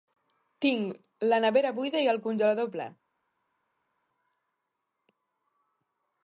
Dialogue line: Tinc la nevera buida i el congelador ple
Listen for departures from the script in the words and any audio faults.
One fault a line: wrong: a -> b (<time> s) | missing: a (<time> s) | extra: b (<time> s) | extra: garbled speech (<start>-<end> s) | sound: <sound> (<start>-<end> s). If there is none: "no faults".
no faults